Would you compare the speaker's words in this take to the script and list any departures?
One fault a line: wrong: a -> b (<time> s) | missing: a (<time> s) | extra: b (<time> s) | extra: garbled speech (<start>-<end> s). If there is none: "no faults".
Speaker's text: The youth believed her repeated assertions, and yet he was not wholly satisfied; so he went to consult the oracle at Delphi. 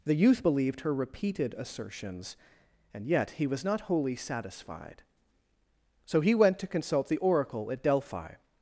no faults